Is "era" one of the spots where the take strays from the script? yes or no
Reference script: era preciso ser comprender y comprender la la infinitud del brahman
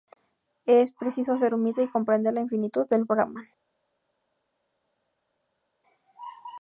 yes